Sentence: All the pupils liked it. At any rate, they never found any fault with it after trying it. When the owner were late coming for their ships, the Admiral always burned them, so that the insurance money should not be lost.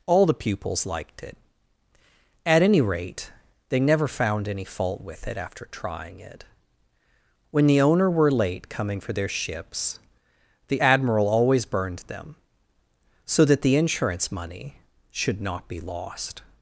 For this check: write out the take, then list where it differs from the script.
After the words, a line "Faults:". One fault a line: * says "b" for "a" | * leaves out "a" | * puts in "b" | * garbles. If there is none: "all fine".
All the pupils liked it. At any rate, they never found any fault with it after trying it. When the owner were late coming for their ships, the Admiral always burned them, so that the insurance money should not be lost.
Faults:
all fine